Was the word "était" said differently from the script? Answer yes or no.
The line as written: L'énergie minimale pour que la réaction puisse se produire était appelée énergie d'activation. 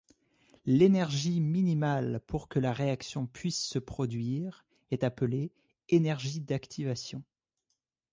yes